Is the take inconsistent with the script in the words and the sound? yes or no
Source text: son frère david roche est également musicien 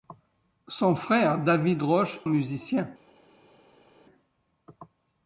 yes